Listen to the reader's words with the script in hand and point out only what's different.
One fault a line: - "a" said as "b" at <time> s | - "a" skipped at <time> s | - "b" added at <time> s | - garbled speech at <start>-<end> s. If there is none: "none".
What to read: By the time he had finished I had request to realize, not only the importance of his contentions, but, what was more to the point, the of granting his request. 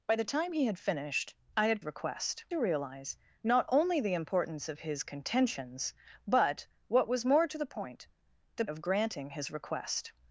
none